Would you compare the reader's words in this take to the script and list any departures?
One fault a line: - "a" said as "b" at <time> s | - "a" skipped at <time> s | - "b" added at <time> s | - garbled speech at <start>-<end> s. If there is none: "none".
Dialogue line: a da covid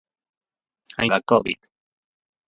none